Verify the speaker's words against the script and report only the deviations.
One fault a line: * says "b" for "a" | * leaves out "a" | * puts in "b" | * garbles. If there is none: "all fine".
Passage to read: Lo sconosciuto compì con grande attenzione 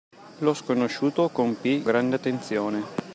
* leaves out "con"